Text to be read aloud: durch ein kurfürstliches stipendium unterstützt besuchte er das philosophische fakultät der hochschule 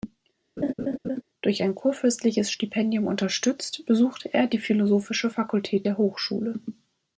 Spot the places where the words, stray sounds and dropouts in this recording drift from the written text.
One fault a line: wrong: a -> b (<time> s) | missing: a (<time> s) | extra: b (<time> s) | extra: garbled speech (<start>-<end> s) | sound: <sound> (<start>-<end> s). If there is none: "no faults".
sound: laugh (0.6-1.2 s)
wrong: das -> die (4.5 s)